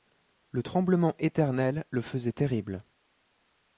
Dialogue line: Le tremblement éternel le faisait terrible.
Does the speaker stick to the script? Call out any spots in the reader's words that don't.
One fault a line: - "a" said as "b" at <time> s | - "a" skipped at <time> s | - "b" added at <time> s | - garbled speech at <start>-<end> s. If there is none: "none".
none